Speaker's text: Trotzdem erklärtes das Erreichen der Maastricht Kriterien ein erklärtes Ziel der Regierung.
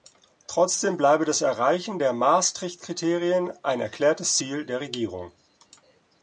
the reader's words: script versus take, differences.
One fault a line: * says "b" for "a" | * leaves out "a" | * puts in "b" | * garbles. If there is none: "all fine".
* says "bleibe" for "erklärtes"